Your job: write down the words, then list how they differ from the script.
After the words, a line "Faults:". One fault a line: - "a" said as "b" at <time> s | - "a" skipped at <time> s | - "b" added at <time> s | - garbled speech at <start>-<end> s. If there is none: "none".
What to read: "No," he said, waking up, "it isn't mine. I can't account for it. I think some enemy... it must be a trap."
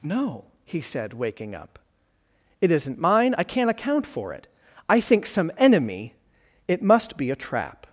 "No," he said, waking up, "it isn't mine. I can't account for it. I think some enemy... it must be a trap."
Faults:
none